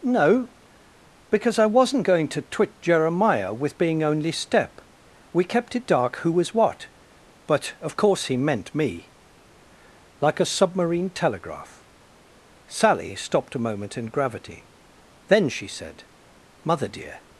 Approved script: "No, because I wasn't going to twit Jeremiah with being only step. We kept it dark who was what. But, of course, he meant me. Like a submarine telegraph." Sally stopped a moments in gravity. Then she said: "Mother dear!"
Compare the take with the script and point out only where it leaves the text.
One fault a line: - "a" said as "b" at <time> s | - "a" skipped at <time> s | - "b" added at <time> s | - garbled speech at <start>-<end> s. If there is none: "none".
- "moments" said as "moment" at 13.6 s